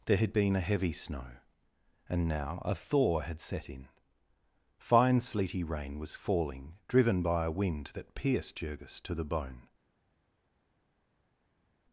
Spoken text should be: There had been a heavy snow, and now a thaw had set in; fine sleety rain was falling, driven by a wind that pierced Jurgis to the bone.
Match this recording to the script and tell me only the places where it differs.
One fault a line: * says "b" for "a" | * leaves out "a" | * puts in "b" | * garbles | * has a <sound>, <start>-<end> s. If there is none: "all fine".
all fine